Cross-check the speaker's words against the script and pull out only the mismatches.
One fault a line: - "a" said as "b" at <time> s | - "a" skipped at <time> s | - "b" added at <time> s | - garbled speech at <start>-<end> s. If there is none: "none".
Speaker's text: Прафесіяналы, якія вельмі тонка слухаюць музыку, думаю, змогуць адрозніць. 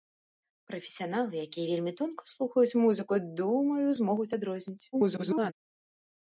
- garbled speech at 4.9-5.5 s